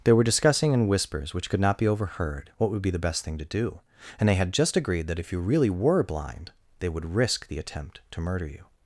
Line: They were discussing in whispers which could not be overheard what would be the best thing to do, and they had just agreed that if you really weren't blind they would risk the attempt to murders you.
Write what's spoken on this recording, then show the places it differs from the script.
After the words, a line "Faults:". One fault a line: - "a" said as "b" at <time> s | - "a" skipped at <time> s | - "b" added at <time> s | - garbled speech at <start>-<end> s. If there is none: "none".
They were discussing in whispers which could not be overheard what would be the best thing to do, and they had just agreed that if you really were blind they would risk the attempt to murder you.
Faults:
- "weren't" said as "were" at 5.7 s
- "murders" said as "murder" at 8.2 s